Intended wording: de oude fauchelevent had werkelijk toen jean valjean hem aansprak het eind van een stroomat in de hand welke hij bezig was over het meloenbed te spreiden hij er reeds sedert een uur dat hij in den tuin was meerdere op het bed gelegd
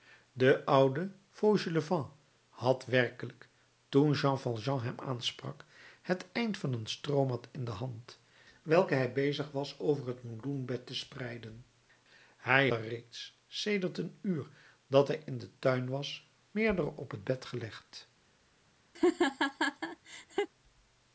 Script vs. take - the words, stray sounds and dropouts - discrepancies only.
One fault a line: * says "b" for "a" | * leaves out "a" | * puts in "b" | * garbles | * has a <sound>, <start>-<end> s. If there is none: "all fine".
* has a laugh, 18.9-20.5 s